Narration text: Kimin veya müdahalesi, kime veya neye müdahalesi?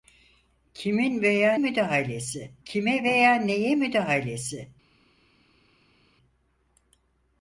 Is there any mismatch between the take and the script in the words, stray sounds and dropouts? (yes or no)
no